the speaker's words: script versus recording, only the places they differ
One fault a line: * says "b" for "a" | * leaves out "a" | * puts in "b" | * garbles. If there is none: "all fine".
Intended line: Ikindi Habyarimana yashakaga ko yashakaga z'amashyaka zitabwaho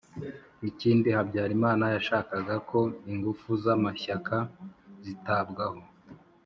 * says "ingufu" for "yashakaga"